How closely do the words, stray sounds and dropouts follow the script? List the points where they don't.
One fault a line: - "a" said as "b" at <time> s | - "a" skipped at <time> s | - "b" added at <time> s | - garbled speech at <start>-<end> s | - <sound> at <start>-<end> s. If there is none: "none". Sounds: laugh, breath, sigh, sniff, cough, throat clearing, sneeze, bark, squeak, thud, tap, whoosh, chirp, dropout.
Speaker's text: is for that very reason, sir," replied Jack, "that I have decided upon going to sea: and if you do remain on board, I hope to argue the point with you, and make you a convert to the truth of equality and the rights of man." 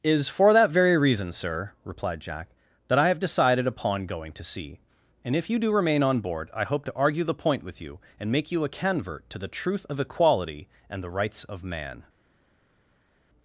none